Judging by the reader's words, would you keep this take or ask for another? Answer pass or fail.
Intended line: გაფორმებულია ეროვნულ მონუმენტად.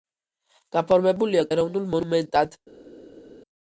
pass